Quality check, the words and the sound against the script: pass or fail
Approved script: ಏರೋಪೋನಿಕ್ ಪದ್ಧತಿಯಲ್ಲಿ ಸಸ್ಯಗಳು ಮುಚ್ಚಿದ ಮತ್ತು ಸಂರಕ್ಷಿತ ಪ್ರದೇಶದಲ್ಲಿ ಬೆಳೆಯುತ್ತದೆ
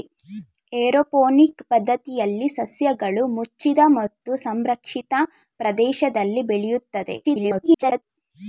fail